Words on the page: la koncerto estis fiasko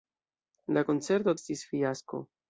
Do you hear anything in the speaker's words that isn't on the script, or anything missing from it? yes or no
no